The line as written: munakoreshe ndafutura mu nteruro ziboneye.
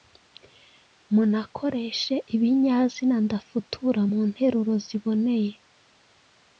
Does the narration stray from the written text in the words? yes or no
yes